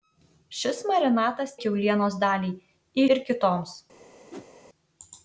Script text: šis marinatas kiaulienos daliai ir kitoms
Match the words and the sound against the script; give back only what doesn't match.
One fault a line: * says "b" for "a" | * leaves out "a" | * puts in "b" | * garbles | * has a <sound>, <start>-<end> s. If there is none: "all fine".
* has a whoosh, 4.3-4.5 s